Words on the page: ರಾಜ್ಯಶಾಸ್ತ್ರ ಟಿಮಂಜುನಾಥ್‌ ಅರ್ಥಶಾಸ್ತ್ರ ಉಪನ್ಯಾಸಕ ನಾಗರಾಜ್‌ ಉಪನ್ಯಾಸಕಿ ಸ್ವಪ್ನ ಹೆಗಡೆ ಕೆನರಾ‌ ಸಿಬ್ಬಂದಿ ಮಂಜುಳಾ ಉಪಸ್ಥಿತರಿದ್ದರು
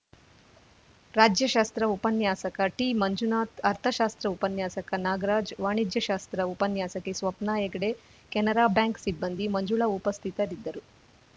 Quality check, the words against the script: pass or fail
fail